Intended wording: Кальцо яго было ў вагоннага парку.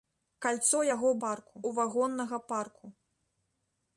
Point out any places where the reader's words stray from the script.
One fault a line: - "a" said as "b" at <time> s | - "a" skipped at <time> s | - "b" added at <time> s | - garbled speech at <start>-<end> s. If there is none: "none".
- "было" said as "парку" at 1.2 s